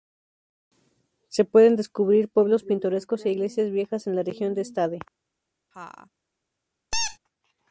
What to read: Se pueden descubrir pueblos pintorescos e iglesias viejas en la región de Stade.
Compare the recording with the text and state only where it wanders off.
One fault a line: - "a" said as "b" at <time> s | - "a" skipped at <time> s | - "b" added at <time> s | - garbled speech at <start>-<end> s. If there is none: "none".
none